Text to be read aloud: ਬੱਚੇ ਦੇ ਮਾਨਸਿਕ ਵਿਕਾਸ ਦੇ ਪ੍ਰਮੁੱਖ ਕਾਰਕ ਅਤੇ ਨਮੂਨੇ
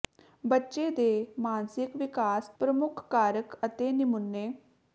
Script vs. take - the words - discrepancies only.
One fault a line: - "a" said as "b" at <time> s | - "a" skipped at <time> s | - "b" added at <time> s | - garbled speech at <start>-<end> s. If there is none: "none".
- "ਦੇ" skipped at 2.5 s